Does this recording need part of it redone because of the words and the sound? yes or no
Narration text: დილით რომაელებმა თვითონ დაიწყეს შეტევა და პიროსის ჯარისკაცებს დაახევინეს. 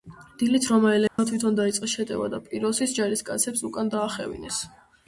yes